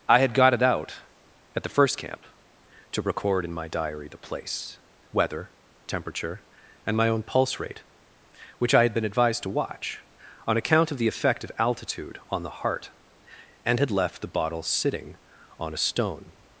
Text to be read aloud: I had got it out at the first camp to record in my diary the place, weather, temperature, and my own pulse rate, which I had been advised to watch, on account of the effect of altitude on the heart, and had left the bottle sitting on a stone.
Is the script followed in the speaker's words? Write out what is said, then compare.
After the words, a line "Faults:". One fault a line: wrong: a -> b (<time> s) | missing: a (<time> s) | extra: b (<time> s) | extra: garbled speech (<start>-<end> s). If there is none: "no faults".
I had got it out at the first camp to record in my diary the place, weather, temperature, and my own pulse rate, which I had been advised to watch, on account of the effect of altitude on the heart, and had left the bottle sitting on a stone.
Faults:
no faults